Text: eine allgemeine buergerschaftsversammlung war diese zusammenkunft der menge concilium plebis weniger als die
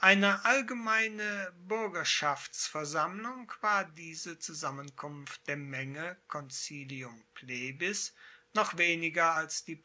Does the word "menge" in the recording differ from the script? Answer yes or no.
no